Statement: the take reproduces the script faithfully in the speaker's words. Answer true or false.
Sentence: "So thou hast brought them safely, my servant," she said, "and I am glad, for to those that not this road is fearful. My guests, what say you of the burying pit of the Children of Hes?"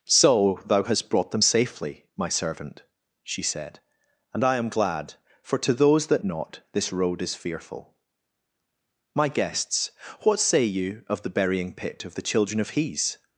true